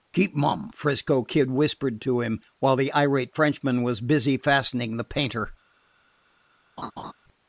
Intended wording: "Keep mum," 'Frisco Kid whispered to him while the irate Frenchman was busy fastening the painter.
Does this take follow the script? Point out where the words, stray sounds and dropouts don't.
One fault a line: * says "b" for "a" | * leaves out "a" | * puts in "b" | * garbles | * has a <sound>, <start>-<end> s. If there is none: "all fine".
* has a laugh, 6.8-7.1 s